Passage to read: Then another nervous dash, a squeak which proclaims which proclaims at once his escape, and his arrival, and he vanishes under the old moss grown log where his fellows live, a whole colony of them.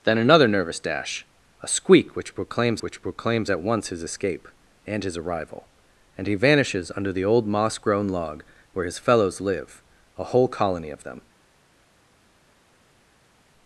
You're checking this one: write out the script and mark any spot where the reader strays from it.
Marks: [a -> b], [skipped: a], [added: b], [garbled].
Then another nervous dash, a squeak which proclaims which proclaims at once his escape, and his arrival, and he vanishes under the old moss grown log where his fellows live, a whole colony of them.